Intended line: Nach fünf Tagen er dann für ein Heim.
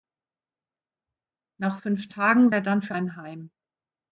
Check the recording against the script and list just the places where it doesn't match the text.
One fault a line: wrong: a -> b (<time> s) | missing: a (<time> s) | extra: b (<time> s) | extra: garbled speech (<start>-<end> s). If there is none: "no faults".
no faults